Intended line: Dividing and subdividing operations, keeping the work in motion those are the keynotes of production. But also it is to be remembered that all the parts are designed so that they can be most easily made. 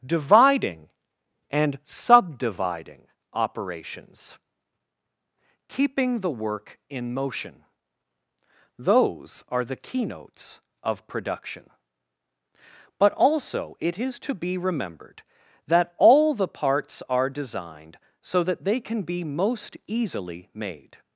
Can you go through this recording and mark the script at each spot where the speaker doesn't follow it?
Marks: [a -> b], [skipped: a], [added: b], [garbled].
Dividing and subdividing operations, keeping the work in motion those are the keynotes of production. But also it is to be remembered that all the parts are designed so that they can be most easily made.